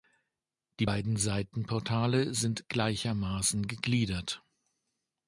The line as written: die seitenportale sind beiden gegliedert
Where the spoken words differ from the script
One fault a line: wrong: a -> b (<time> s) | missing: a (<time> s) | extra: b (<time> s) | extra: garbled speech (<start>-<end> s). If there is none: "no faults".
extra: beiden (0.8 s)
wrong: beiden -> gleichermaßen (2.7 s)